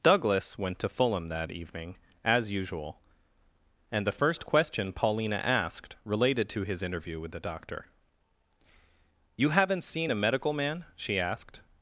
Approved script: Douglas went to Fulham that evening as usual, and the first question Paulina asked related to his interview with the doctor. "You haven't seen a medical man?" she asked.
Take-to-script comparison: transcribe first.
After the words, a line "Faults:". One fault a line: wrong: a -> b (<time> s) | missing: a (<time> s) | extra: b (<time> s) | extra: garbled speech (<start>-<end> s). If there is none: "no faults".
Douglas went to Fulham that evening as usual, and the first question Paulina asked related to his interview with the doctor. "You haven't seen a medical man?" she asked.
Faults:
no faults